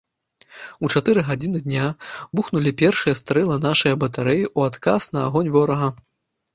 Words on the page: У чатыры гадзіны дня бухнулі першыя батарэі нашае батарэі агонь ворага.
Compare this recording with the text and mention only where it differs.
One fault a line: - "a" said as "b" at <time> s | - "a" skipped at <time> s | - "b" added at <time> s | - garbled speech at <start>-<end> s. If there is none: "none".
- "батарэі" said as "стрэлы" at 3.2 s
- "ў адказ на" added at 4.6 s